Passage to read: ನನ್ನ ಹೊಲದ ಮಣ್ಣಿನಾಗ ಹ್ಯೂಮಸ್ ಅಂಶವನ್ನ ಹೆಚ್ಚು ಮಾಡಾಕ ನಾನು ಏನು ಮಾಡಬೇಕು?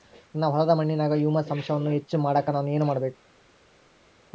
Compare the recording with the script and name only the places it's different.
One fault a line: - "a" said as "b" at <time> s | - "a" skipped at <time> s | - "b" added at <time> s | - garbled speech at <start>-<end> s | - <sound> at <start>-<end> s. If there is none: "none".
none